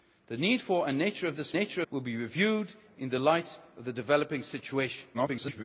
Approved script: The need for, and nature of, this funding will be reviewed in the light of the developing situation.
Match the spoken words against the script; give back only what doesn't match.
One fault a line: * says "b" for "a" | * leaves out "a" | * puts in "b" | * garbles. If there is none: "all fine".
* says "nature" for "funding"
* garbles